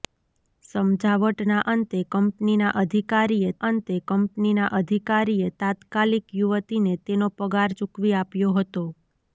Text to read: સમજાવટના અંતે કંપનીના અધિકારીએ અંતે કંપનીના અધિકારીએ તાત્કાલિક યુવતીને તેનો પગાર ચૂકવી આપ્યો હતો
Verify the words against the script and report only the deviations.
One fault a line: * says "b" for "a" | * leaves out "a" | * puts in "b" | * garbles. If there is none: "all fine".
all fine